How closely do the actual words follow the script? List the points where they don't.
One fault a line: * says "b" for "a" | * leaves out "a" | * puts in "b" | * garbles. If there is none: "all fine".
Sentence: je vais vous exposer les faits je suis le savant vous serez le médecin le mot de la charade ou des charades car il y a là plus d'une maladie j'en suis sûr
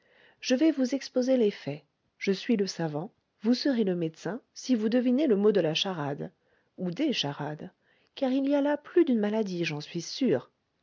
* puts in "si vous devinez"